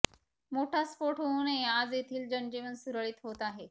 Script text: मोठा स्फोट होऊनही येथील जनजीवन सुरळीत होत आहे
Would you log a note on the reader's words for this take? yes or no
yes